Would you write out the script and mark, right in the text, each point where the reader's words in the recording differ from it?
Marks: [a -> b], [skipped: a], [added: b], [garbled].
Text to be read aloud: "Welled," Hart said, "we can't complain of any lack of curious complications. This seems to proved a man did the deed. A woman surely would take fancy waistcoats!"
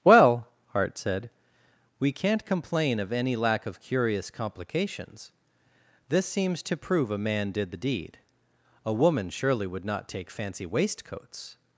["Welled," -> Well] Hart said, "we can't complain of any lack of curious complications. This seems to [proved -> prove] a man did the deed. A woman surely would [added: not] take fancy waistcoats!"